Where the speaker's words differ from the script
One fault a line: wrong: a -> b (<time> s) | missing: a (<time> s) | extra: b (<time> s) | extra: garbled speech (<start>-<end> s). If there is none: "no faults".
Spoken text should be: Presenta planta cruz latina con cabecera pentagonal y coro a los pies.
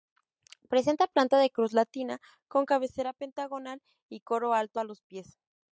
extra: de (1.4 s)
extra: alto (4.5 s)